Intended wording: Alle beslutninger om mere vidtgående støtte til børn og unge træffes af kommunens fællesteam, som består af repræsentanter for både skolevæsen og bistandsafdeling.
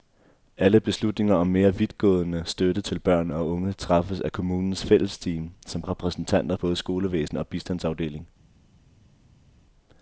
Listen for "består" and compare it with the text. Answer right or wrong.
wrong